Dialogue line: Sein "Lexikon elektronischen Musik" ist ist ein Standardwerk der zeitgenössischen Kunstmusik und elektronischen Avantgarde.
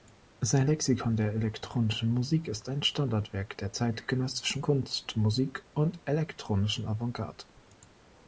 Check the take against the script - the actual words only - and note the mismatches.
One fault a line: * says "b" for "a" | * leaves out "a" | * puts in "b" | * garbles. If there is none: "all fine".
* puts in "der"
* leaves out "ist"